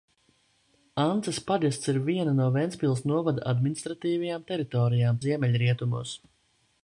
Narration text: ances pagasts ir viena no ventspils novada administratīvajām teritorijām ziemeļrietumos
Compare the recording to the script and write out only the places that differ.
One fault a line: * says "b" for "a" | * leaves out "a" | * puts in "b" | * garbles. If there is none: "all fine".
all fine